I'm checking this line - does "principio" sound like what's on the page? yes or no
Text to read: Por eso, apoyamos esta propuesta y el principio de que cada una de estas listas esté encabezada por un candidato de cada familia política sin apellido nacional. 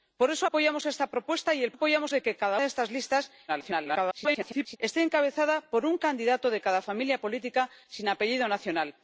no